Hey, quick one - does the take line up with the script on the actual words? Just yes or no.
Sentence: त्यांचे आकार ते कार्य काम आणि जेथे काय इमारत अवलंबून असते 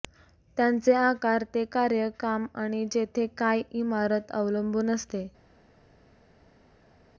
yes